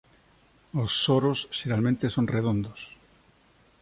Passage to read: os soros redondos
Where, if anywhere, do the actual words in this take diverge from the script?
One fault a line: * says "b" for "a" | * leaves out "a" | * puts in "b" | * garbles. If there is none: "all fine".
* puts in "xeralmente son"